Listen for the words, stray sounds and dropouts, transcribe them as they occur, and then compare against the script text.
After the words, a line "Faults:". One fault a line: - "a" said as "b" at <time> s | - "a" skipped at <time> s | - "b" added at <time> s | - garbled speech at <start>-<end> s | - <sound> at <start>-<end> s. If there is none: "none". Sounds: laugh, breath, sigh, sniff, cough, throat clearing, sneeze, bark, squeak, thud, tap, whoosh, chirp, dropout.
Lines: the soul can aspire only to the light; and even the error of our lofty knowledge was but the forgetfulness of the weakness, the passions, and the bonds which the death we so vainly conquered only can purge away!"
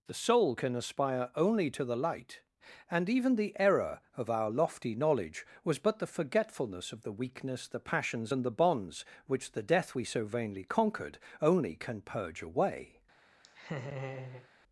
the soul can aspire only to the light; and even the error of our lofty knowledge was but the forgetfulness of the weakness, the passions, and the bonds which the death we so vainly conquered only can purge away!"
Faults:
- laugh at 13.4-14.5 s